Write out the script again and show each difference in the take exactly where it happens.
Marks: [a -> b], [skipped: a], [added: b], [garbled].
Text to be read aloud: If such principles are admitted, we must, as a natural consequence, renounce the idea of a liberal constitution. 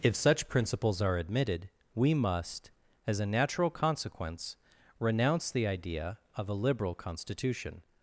If such principles are admitted, we must, as a natural consequence, renounce the idea of a liberal constitution.